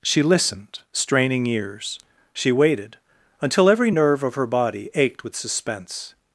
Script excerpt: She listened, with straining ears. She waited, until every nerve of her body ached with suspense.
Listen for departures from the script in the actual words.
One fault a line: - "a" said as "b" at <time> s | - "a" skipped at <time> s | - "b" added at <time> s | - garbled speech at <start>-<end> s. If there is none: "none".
- "with" skipped at 0.8 s